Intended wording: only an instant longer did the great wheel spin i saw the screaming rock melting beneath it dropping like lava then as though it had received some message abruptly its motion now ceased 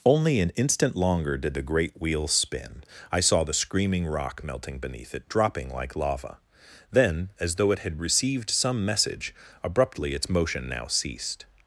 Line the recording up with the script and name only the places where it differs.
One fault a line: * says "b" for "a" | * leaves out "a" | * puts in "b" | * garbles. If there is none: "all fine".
all fine